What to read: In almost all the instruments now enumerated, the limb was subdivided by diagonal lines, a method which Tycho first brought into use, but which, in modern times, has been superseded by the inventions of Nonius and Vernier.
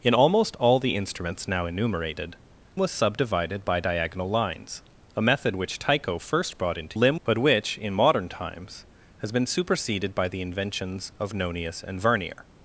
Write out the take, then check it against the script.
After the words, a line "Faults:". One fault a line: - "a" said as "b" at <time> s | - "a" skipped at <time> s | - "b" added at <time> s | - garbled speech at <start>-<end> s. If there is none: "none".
In almost all the instruments now enumerated, was subdivided by diagonal lines, a method which Tycho first brought into limb, but which, in modern times, has been superseded by the inventions of Nonius and Vernier.
Faults:
- "the limb" skipped at 2.4 s
- "use" said as "limb" at 6.9 s